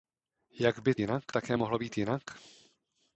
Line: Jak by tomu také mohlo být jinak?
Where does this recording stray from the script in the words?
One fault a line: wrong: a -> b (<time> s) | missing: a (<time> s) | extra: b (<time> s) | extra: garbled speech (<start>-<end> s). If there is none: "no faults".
wrong: tomu -> jinak (1.0 s)